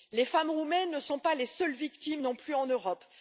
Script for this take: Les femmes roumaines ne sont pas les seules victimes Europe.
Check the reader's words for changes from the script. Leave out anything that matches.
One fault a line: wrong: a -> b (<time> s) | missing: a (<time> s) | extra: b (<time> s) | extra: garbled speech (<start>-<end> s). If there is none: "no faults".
extra: non plus en (2.2 s)